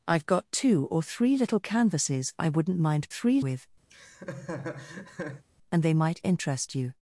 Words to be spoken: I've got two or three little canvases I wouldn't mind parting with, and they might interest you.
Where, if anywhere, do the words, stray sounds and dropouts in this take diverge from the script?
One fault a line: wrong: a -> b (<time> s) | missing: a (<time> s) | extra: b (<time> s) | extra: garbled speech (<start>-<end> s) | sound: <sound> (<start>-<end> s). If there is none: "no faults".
wrong: parting -> three (3.1 s)
sound: laugh (3.9-5.4 s)